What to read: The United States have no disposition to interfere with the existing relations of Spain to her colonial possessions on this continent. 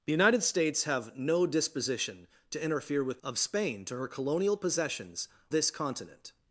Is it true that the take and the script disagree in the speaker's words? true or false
true